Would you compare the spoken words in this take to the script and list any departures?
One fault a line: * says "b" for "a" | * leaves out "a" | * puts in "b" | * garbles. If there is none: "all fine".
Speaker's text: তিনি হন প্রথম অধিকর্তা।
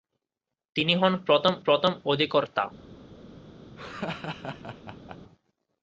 * puts in "প্রথম"